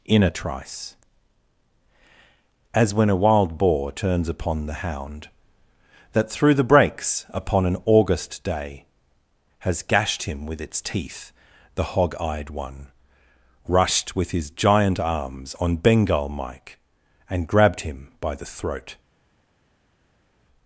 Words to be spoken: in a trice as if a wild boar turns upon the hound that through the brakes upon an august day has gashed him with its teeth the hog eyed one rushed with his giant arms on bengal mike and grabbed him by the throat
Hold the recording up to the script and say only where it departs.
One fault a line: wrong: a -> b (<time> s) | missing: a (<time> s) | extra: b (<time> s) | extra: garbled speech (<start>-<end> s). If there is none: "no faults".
wrong: if -> when (2.9 s)